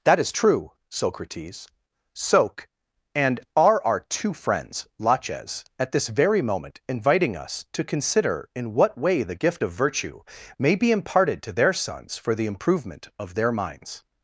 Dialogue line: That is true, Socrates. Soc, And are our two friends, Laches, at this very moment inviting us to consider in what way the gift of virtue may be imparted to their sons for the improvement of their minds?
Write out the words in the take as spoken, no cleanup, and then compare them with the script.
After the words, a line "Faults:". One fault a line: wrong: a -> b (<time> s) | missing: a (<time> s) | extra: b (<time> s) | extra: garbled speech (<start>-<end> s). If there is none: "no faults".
That is true, Socrates. Soc, And are our two friends, Laches, at this very moment inviting us to consider in what way the gift of virtue may be imparted to their sons for the improvement of their minds?
Faults:
no faults